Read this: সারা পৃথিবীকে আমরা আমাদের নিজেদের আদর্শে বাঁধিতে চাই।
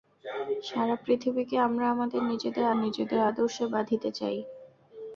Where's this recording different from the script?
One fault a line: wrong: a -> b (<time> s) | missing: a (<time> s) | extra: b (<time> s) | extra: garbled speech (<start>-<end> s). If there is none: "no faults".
extra: নিজেদের (2.8 s)